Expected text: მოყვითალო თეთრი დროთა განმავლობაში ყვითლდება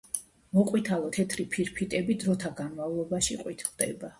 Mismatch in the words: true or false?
true